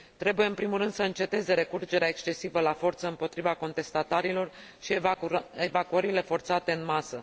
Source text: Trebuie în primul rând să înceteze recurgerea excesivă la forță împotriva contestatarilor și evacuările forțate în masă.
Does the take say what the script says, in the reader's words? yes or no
yes